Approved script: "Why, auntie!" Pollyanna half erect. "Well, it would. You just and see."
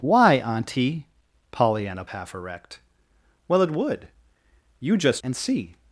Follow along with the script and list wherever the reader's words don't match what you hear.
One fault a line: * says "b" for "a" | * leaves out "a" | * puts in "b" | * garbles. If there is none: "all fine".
all fine